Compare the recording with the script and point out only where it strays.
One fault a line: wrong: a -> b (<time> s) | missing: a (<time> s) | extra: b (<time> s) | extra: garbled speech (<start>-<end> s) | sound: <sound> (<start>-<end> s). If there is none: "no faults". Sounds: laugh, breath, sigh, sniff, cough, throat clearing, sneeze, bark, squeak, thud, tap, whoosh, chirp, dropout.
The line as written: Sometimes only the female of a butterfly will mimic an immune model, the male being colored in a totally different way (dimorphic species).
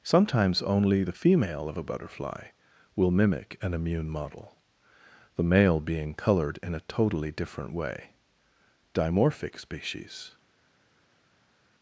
no faults